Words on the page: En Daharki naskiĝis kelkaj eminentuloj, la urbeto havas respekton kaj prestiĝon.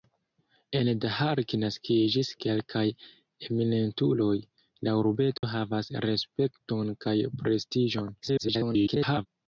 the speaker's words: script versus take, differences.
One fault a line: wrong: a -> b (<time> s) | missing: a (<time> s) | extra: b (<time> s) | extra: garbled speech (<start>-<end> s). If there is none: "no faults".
extra: garbled speech (8.2-9.3 s)